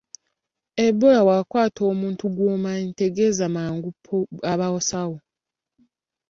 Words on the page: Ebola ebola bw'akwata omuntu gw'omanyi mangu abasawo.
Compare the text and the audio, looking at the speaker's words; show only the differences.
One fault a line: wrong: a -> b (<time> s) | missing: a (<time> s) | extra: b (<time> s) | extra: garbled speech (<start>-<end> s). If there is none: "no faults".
missing: ebola (1.2 s)
extra: tegeeza (3.0 s)